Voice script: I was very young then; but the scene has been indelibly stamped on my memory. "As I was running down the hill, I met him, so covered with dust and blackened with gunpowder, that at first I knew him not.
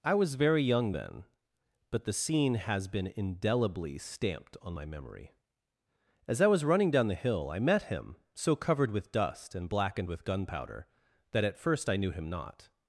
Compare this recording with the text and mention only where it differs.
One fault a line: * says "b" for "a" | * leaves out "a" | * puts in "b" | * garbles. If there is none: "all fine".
all fine